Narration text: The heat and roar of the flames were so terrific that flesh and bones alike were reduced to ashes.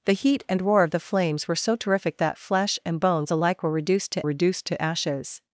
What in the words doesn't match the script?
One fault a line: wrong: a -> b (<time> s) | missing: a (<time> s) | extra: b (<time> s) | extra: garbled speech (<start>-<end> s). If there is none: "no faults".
extra: reduced to (4.2 s)